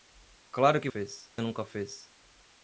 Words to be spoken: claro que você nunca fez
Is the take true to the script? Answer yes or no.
no